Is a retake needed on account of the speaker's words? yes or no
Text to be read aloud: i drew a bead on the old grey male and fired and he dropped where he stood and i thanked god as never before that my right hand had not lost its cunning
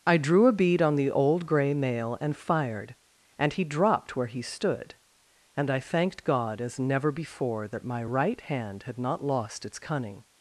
no